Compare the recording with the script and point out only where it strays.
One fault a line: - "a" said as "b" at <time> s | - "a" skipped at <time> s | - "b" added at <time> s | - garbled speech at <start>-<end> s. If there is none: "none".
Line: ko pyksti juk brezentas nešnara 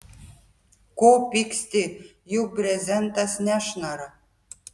none